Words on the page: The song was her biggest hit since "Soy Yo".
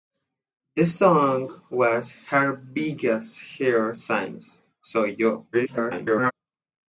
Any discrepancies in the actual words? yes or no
yes